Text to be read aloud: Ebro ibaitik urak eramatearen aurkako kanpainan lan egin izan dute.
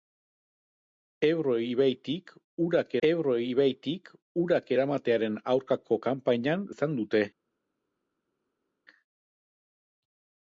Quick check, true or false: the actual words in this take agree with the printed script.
false